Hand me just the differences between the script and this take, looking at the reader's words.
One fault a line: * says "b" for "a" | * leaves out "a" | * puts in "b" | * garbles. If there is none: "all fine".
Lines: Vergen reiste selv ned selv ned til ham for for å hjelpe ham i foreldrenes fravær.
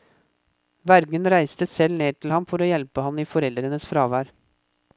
* leaves out "selv ned"
* leaves out "for"